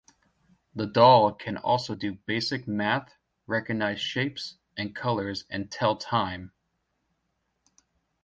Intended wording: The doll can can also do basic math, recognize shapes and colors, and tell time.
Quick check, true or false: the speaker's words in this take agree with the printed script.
false